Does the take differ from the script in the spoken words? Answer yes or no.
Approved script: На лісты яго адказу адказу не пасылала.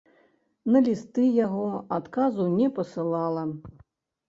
yes